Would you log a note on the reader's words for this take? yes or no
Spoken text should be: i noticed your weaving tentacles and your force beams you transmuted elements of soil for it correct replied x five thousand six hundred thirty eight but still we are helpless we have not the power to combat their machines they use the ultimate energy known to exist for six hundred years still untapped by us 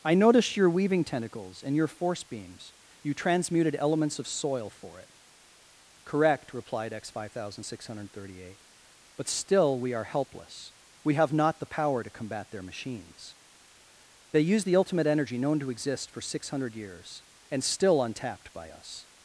yes